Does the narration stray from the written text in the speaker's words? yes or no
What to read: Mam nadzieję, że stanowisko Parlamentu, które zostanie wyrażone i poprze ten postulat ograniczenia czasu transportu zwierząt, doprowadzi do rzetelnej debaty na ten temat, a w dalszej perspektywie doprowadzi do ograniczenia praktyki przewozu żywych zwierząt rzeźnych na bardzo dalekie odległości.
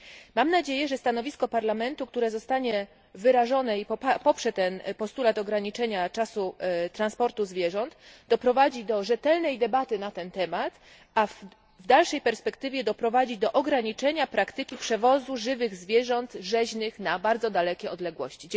no